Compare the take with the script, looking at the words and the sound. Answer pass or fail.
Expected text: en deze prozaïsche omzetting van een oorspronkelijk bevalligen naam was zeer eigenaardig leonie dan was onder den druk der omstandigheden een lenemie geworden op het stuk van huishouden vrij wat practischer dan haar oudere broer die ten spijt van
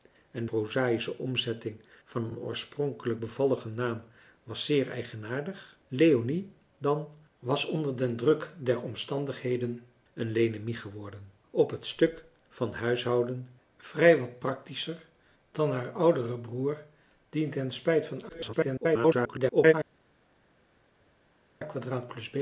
fail